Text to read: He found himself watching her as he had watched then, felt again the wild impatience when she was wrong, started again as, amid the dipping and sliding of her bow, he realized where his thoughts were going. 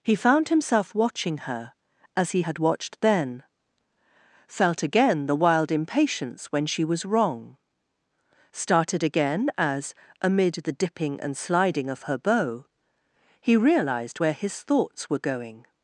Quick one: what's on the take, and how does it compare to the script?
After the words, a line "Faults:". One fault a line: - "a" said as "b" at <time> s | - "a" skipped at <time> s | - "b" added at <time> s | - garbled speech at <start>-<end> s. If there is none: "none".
He found himself watching her as he had watched then, felt again the wild impatience when she was wrong, started again as, amid the dipping and sliding of her bow, he realized where his thoughts were going.
Faults:
none